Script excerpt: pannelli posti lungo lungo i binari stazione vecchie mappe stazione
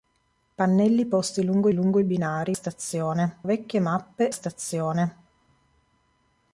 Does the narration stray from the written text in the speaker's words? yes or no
no